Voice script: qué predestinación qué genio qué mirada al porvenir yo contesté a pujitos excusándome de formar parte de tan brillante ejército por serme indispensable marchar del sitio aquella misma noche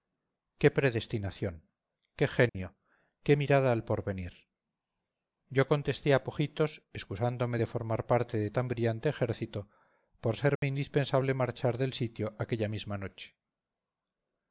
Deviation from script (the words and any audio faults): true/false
true